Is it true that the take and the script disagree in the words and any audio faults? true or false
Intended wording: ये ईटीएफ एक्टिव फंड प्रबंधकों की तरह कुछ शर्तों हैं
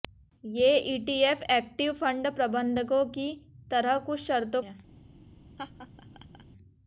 true